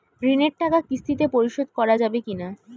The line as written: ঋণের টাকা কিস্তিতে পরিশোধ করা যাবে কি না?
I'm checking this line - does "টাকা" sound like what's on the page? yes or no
yes